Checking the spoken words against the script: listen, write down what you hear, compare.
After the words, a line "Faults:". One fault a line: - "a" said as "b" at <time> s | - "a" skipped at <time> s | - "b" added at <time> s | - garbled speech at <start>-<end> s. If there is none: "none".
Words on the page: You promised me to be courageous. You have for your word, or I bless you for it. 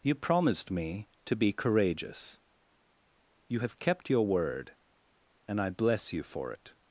You promised me to be courageous. You have kept your word, and I bless you for it.
Faults:
- "for" said as "kept" at 3.8 s
- "or" said as "and" at 5.4 s